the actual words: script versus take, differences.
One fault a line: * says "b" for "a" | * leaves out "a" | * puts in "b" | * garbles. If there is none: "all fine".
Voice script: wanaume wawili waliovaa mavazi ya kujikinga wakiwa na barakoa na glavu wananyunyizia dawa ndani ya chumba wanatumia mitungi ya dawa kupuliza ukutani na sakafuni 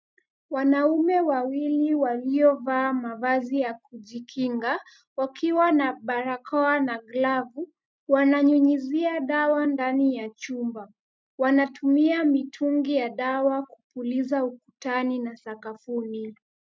all fine